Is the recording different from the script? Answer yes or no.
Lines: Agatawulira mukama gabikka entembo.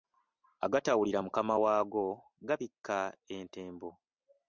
yes